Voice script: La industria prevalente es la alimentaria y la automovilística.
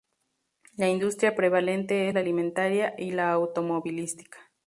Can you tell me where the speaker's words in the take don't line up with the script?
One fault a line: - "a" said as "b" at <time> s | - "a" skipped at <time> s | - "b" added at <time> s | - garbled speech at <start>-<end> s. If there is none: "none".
none